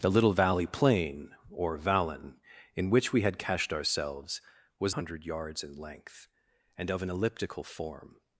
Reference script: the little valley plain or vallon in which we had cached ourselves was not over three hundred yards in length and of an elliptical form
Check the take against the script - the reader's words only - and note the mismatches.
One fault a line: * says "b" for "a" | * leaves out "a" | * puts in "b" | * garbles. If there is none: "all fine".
* leaves out "not over three"